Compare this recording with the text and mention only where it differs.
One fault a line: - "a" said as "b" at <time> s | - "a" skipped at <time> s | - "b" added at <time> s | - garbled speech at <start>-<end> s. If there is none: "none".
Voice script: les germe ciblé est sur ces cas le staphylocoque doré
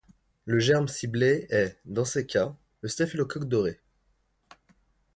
- "les" said as "le" at 0.5 s
- "sur" said as "dans" at 1.9 s